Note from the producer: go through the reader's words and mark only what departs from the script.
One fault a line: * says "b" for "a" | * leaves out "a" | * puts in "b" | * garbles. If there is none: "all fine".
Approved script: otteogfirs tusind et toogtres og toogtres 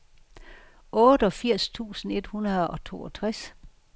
* says "hundrede" for "toogtres"